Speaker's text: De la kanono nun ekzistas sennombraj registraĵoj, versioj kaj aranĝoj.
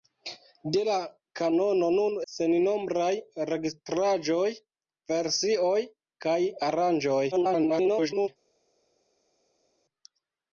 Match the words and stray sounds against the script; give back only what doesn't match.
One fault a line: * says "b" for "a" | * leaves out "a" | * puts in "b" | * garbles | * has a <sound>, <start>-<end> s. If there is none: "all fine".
* leaves out "ekzistas"
* garbles